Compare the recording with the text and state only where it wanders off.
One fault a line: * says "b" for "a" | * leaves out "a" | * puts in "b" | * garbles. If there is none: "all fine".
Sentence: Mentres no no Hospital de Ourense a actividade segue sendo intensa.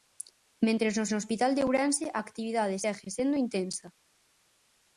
all fine